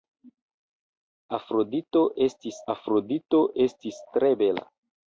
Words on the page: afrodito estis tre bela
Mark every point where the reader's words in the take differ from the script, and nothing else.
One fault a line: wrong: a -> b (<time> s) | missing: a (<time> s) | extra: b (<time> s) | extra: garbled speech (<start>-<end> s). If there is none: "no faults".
extra: afrodito estis (2.8 s)